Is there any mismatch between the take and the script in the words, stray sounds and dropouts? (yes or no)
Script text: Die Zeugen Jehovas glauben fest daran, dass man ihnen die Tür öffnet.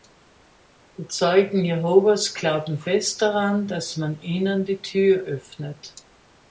no